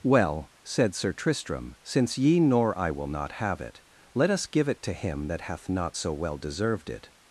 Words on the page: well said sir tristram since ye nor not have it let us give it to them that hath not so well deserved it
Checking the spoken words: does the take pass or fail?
fail